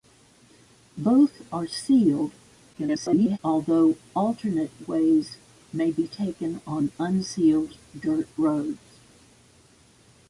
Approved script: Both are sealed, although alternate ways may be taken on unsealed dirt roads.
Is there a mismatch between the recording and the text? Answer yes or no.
yes